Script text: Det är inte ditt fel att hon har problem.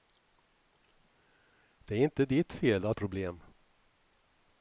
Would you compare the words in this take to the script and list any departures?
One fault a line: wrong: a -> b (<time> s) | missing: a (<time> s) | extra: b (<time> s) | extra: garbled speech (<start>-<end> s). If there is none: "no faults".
missing: hon har (3.0 s)